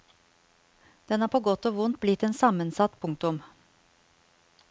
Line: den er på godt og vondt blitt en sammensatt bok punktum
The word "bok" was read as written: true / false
false